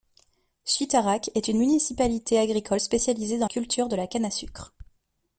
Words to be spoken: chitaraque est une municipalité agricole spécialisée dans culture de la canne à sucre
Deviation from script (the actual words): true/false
false